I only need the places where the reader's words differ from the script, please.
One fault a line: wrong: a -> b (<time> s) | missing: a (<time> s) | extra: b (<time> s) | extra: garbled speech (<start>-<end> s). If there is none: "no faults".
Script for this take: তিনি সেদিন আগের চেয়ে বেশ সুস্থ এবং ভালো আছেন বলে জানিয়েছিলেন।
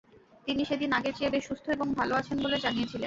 no faults